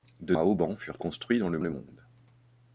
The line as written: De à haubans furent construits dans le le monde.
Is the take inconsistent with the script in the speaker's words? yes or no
no